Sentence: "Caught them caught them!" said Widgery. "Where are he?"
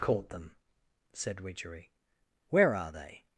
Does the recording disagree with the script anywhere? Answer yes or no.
yes